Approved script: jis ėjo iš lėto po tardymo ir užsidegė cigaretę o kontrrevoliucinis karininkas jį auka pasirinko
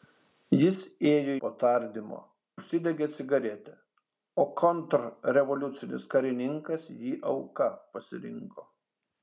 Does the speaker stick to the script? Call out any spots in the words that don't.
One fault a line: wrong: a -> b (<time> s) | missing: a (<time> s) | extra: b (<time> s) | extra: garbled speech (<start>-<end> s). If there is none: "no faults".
missing: iš lėto (1.3 s)
missing: ir (2.2 s)